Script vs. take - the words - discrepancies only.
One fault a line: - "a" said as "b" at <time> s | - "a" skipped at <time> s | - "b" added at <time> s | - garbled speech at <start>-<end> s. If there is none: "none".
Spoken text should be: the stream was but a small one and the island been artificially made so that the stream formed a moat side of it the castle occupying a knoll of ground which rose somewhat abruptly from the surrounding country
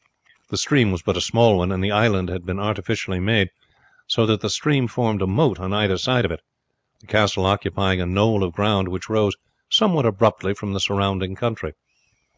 - "had" added at 2.3 s
- "on either" added at 5.6 s